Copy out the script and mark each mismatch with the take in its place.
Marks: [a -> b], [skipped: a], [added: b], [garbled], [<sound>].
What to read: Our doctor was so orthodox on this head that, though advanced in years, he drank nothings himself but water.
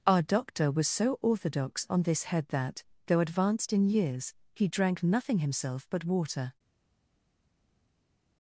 Our doctor was so orthodox on this head that, though advanced in years, he drank [nothings -> nothing] himself but water.